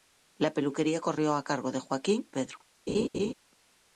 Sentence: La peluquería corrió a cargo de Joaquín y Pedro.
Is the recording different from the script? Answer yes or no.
yes